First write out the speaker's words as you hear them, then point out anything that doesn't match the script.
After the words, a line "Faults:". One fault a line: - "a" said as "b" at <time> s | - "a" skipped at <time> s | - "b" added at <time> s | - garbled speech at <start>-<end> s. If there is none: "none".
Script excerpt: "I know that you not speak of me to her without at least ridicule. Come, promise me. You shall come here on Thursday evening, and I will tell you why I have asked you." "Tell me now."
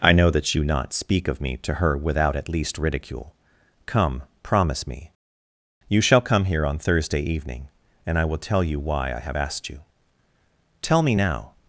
"I know that you not speak of me to her without at least ridicule. Come, promise me. You shall come here on Thursday evening, and I will tell you why I have asked you." "Tell me now."
Faults:
none